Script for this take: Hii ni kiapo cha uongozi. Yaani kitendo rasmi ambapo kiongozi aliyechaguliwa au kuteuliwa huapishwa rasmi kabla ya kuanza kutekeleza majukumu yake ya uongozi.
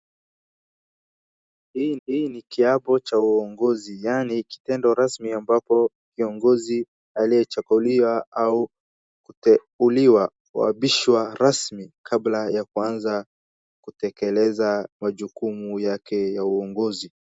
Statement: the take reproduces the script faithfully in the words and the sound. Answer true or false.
false